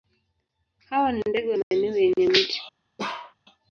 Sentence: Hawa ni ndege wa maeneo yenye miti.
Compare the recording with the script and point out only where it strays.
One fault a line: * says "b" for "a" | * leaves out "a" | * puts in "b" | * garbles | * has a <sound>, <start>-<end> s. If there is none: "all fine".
* has a dropout, 1.6-1.7 s
* has a bark, 3.0-3.3 s